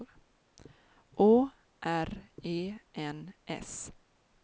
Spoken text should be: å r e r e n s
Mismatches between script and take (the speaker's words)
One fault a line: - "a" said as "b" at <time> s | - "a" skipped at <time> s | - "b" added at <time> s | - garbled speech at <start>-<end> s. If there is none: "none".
- "r e" skipped at 2.8 s